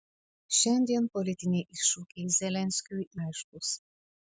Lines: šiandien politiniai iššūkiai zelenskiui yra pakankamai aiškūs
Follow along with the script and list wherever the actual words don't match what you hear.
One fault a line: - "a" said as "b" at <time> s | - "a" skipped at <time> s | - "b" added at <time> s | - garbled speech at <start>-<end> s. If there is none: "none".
- "yra pakankamai" skipped at 3.1 s